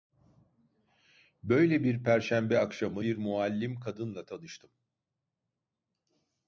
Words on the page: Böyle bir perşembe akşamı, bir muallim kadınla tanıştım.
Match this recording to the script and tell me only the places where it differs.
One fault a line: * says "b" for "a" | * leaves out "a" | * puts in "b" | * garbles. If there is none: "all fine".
all fine